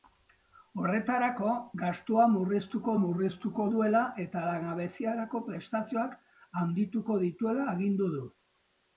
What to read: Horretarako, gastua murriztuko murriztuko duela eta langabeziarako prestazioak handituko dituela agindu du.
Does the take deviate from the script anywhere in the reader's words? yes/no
no